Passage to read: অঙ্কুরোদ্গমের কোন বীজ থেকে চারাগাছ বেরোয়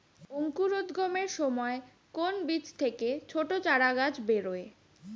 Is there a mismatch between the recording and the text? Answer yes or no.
yes